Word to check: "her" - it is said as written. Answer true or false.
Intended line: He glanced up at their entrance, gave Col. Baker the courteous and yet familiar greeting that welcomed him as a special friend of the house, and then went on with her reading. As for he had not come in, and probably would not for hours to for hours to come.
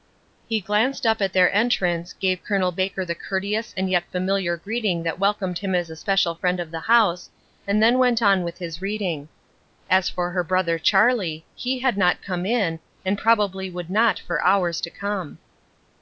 false